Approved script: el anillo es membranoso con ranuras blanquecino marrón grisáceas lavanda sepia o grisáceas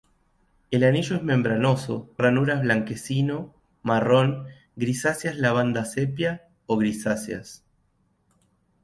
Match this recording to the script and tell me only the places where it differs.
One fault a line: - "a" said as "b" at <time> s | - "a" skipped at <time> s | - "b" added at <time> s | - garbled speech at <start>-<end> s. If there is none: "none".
- "con" skipped at 2.1 s